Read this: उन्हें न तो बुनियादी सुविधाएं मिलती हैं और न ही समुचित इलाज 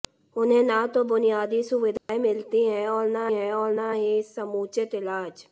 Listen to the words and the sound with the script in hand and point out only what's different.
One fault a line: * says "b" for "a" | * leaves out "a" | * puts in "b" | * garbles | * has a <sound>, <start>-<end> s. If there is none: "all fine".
* has a dropout, 2.0-2.1 s
* puts in "हैं और न"